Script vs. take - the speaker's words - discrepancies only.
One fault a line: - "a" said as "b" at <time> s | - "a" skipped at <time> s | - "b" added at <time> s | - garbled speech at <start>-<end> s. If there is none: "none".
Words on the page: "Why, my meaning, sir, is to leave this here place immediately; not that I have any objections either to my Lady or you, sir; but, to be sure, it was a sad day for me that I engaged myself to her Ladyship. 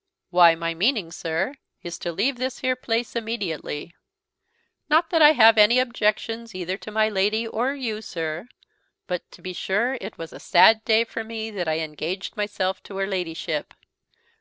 none